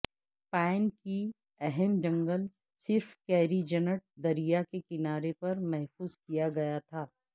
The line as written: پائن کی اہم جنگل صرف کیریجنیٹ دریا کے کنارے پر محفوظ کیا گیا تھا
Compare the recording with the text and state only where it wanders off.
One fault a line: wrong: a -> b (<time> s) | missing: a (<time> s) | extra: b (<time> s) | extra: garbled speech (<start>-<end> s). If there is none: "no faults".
no faults